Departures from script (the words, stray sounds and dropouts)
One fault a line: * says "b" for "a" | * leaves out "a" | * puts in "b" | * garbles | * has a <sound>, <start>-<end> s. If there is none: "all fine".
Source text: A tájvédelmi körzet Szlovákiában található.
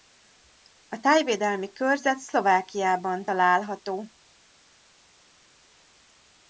all fine